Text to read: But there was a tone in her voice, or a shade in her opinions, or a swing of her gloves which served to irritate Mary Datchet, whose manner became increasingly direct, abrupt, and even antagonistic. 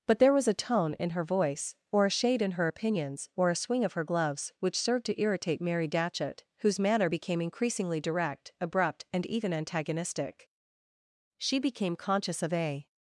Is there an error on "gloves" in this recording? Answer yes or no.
no